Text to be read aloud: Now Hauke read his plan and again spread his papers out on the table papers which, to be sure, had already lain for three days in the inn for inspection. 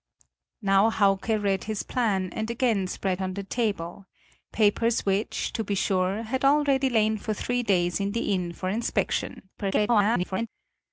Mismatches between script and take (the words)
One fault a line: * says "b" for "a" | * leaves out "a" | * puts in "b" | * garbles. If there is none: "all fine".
* leaves out "his papers out"
* garbles